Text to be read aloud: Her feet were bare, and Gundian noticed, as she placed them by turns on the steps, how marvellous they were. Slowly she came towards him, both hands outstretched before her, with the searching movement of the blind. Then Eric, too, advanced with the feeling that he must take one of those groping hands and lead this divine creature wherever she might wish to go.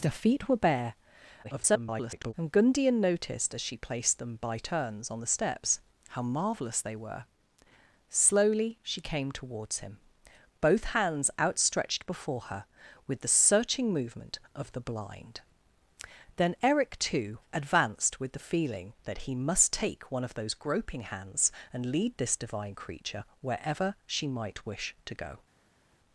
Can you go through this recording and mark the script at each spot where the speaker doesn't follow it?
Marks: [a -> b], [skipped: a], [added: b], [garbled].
Her feet were bare, [garbled] and Gundian noticed, as she placed them by turns on the steps, how marvellous they were. Slowly she came towards him, both hands outstretched before her, with the searching movement of the blind. Then Eric, too, advanced with the feeling that he must take one of those groping hands and lead this divine creature wherever she might wish to go.